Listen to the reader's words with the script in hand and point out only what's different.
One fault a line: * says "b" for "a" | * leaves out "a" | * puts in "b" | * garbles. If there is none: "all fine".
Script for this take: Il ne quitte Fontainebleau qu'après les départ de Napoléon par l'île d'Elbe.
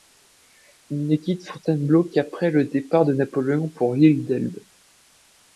* says "le" for "les"
* says "pour" for "par"